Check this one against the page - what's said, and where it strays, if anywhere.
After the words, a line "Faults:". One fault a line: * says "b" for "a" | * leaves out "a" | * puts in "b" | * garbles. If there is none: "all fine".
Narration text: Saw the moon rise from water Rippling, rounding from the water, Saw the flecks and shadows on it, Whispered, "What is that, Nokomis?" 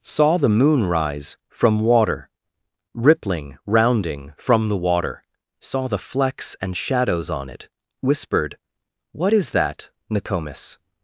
Saw the moon rise from water Rippling, rounding from the water, Saw the flecks and shadows on it, Whispered, "What is that, Nokomis?"
Faults:
all fine